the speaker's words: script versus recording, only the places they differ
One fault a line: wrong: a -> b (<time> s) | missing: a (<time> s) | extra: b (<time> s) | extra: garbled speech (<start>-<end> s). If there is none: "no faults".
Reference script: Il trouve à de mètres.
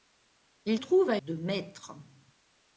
no faults